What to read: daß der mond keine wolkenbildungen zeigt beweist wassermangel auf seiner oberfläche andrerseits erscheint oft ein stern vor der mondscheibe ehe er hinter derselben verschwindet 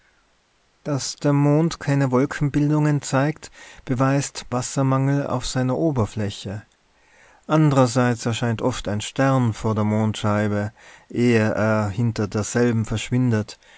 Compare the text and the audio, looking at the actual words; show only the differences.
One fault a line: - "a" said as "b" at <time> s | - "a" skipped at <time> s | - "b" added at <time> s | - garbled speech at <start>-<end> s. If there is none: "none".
none